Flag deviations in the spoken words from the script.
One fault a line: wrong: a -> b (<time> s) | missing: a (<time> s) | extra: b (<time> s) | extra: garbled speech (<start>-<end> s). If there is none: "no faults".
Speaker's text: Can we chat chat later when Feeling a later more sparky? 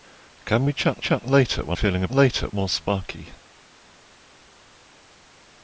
no faults